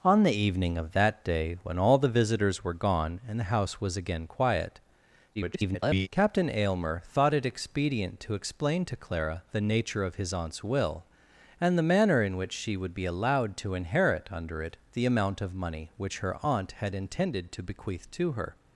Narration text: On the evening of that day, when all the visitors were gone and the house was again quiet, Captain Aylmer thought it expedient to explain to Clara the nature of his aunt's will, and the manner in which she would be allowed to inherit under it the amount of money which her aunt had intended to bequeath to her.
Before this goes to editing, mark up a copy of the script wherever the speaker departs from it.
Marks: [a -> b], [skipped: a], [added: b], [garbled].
On the evening of that day, when all the visitors were gone and the house was again quiet, [garbled] Captain Aylmer thought it expedient to explain to Clara the nature of his aunt's will, and the manner in which she would be allowed to inherit under it the amount of money which her aunt had intended to bequeath to her.